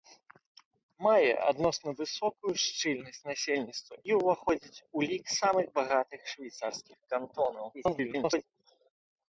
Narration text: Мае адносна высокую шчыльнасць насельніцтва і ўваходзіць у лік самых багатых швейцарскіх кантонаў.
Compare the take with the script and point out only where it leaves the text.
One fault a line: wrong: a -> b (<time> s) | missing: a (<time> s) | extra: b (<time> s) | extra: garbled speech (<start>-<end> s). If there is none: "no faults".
extra: garbled speech (7.7-8.5 s)